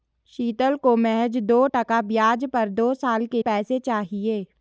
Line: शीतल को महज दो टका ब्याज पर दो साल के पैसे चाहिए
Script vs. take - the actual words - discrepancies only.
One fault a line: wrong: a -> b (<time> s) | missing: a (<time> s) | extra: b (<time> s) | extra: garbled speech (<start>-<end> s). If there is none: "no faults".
no faults